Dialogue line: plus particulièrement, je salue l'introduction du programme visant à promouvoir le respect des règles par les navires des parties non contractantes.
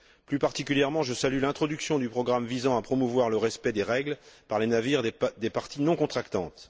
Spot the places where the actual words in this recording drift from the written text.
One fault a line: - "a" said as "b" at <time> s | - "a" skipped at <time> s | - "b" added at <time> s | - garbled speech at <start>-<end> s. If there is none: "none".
none